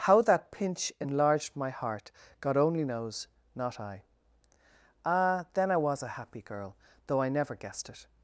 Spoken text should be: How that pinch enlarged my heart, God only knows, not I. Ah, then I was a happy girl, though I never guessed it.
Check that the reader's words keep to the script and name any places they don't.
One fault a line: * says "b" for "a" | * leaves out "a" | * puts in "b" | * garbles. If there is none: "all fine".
all fine